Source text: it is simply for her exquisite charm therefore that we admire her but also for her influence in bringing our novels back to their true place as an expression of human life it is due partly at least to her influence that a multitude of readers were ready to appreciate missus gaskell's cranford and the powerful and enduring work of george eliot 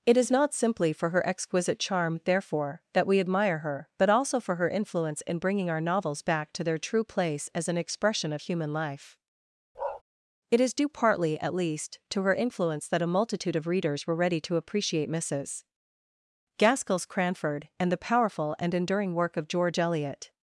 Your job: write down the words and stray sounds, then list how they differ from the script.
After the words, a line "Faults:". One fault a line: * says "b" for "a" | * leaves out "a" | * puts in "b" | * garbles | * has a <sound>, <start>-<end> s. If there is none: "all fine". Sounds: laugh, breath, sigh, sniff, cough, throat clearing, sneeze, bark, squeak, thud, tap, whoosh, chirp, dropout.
it is not simply for her exquisite charm therefore that we admire her but also for her influence in bringing our novels back to their true place as an expression of human life it is due partly at least to her influence that a multitude of readers were ready to appreciate missus gaskell's cranford and the powerful and enduring work of george eliot
Faults:
* puts in "not"
* has a bark, 9.7-10.0 s